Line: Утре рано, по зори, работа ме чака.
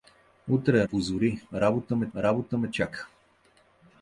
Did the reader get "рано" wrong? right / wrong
wrong